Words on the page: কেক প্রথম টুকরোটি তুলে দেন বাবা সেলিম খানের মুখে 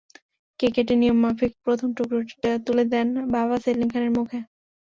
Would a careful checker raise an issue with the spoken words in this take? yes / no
yes